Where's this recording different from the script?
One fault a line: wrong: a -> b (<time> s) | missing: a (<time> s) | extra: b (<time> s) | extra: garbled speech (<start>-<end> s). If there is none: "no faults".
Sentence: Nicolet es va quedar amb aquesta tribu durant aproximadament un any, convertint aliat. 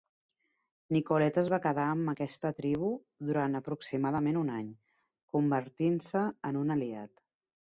extra: se en un (6.1 s)